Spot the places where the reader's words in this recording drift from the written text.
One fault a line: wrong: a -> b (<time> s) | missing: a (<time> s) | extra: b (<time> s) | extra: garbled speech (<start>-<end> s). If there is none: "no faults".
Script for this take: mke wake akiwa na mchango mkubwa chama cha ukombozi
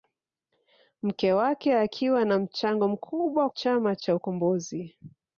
no faults